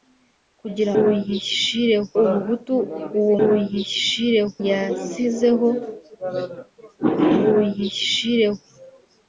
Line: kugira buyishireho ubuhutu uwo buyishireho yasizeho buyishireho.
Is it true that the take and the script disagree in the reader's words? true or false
false